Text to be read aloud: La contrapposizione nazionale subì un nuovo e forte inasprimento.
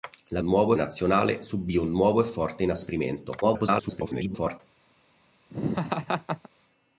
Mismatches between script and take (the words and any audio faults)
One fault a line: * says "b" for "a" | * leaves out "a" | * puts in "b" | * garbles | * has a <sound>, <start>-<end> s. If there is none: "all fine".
* says "nuovo" for "contrapposizione"
* garbles
* has a laugh, 5.5-6.5 s